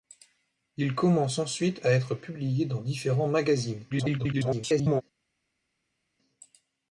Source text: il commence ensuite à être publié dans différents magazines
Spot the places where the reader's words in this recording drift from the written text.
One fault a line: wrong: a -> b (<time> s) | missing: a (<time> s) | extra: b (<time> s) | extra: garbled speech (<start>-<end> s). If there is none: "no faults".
extra: garbled speech (3.9-5.0 s)